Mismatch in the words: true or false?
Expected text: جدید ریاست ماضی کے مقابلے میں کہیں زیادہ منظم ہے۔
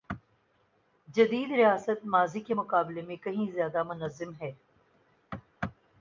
false